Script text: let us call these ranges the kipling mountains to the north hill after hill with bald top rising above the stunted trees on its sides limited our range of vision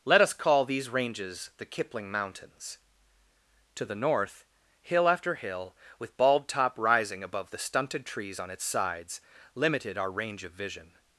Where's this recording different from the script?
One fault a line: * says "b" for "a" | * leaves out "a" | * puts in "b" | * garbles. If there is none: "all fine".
all fine